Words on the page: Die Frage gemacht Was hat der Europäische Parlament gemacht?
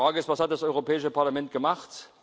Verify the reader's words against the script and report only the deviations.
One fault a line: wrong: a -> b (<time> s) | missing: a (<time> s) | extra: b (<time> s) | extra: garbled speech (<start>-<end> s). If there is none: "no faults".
wrong: gemacht -> ist (0.2 s)
wrong: der -> das (0.5 s)